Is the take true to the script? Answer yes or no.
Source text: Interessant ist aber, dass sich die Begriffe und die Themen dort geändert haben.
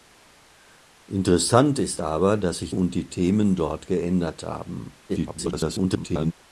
no